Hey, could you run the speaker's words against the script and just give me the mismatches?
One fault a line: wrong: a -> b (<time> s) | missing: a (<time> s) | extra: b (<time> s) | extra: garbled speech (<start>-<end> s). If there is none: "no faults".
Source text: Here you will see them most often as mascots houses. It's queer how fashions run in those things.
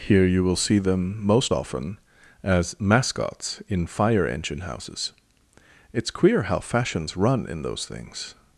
extra: in fire engine (3.7 s)